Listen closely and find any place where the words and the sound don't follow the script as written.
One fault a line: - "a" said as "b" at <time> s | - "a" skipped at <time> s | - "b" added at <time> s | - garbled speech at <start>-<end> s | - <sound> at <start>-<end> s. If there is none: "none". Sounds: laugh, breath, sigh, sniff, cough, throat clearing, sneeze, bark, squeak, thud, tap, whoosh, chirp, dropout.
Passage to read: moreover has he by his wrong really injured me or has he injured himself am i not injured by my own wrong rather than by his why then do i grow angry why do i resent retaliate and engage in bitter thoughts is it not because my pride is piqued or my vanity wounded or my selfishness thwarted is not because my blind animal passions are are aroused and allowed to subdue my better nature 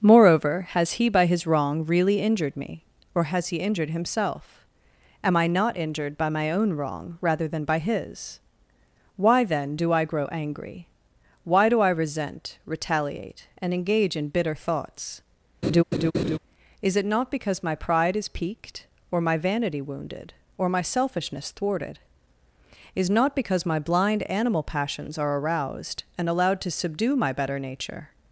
- laugh at 15.6-16.4 s
- "are" skipped at 25.4 s